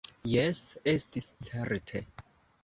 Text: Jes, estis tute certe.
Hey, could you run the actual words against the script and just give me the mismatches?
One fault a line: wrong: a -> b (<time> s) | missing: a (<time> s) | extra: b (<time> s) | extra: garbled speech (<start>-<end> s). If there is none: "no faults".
missing: tute (1.3 s)